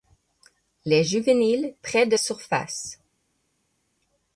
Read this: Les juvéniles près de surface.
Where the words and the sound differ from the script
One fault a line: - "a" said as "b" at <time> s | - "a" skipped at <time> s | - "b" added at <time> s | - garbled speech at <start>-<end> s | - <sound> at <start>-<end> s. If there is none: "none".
none